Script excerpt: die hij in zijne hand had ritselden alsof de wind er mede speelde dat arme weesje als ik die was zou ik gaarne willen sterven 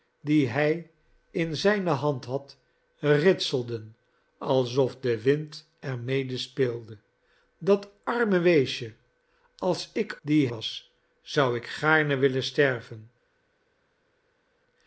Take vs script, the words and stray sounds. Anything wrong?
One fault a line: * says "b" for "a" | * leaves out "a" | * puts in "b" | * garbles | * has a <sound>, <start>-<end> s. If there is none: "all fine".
all fine